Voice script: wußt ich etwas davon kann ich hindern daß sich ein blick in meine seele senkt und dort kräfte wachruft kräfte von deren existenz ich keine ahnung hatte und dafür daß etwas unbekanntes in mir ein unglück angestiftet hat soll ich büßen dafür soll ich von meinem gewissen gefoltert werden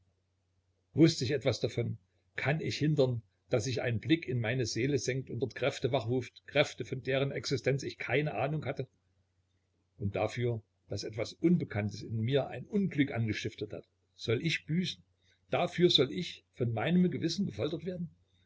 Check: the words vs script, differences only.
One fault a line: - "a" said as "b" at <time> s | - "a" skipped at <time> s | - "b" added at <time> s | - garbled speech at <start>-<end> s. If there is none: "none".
none